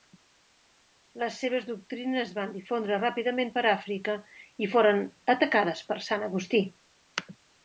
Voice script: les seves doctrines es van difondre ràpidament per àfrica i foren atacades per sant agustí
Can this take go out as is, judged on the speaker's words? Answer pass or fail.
pass